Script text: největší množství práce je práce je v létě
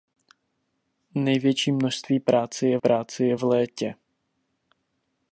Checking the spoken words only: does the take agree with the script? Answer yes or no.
yes